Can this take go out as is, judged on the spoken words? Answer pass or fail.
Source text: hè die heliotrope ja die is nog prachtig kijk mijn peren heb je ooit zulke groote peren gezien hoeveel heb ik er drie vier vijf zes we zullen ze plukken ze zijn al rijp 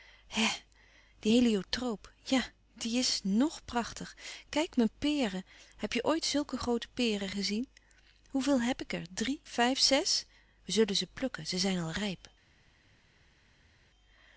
fail